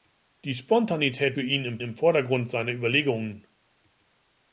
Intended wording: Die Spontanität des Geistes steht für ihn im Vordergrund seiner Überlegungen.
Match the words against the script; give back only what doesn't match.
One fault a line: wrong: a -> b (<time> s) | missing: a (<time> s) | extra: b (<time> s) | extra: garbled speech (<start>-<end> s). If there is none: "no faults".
missing: des Geistes steht (1.4 s)
extra: im (1.8 s)